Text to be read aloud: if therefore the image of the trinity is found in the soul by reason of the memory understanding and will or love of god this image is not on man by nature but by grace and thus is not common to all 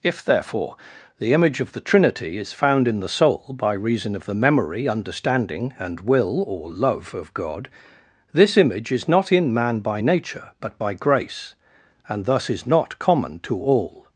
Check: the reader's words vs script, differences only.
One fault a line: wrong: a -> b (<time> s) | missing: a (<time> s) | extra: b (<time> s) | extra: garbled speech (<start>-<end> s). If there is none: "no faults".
wrong: on -> in (9.3 s)